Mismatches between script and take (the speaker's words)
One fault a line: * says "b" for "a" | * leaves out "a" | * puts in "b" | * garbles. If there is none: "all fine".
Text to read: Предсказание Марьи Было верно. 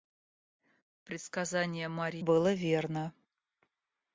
all fine